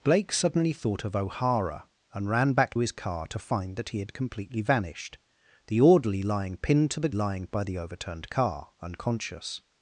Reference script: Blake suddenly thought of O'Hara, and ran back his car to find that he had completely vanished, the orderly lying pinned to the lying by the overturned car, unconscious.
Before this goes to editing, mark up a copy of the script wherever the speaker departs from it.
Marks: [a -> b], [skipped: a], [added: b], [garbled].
Blake suddenly thought of O'Hara, and ran back his car to find that he had completely vanished, the orderly lying pinned to the lying by the overturned car, unconscious.